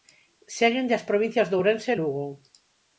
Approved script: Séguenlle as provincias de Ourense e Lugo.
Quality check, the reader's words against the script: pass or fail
pass